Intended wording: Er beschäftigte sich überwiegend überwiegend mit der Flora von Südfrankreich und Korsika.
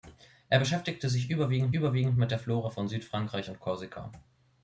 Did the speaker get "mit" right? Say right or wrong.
right